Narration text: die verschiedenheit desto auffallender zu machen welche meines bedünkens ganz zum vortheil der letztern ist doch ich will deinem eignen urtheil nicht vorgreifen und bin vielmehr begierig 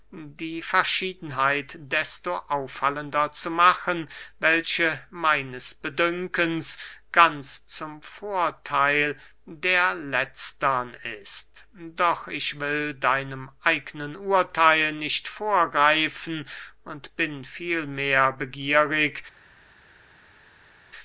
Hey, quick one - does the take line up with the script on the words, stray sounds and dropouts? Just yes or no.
yes